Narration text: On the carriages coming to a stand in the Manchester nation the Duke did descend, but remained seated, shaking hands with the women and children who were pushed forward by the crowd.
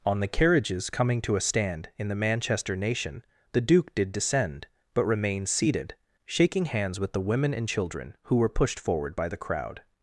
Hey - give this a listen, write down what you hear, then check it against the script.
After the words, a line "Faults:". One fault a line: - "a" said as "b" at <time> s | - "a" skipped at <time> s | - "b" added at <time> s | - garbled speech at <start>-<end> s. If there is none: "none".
On the carriages coming to a stand in the Manchester nation the Duke did descend, but remained seated, shaking hands with the women and children who were pushed forward by the crowd.
Faults:
none